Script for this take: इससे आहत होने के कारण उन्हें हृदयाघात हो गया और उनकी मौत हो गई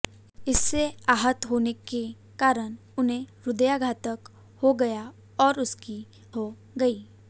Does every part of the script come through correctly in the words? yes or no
no